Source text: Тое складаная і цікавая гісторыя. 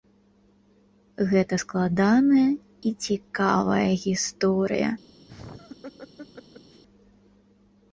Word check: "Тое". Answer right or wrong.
wrong